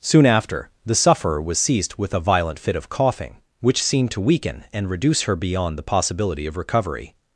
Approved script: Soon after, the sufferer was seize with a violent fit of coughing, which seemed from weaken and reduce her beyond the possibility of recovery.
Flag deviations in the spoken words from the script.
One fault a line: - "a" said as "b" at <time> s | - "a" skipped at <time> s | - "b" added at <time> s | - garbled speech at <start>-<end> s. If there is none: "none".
- "seize" said as "seized" at 1.6 s
- "from" said as "to" at 4.1 s